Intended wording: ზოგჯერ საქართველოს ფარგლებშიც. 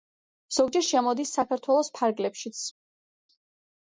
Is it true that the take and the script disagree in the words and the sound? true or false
true